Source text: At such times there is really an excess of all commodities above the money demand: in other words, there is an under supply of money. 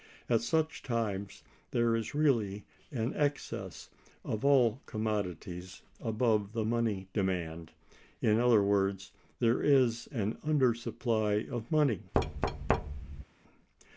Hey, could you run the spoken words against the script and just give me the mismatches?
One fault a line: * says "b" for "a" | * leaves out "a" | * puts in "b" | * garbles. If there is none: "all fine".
all fine